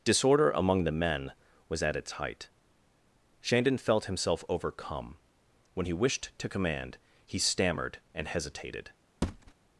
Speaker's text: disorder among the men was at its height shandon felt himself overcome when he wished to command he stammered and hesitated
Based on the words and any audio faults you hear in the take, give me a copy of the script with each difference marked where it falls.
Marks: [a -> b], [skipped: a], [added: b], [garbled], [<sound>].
disorder among the men was at its height shandon felt himself overcome when he wished to command he stammered and hesitated [thud]